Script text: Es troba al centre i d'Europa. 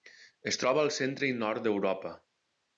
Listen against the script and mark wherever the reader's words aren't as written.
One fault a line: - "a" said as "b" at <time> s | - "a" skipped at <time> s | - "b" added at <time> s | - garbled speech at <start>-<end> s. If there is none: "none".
- "nord" added at 1.4 s